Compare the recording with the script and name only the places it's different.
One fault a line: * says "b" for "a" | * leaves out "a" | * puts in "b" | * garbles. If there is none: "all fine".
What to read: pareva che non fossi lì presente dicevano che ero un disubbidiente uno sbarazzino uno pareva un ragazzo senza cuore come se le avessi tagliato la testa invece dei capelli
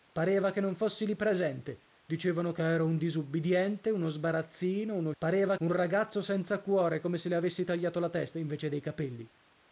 all fine